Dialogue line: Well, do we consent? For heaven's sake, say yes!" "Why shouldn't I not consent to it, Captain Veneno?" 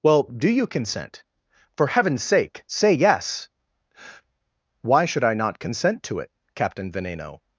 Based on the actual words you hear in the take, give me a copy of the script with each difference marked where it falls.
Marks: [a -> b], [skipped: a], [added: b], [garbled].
Well, do [we -> you] consent? For heaven's sake, say yes!" "Why [shouldn't -> should] I not consent to it, Captain Veneno?"